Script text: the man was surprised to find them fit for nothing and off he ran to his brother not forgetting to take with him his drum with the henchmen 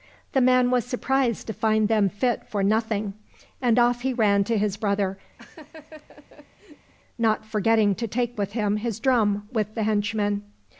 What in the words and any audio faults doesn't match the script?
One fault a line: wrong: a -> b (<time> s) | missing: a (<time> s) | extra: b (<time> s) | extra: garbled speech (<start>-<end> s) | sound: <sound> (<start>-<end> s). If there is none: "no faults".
sound: laugh (5.4-6.9 s)